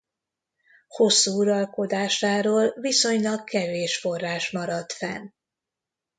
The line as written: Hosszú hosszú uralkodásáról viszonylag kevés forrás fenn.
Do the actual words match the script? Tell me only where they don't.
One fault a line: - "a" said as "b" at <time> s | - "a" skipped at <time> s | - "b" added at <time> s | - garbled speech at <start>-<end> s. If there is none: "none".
- "hosszú" skipped at 1.4 s
- "maradt" added at 4.5 s